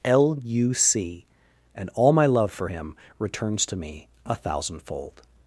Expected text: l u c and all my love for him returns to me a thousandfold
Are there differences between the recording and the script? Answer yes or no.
no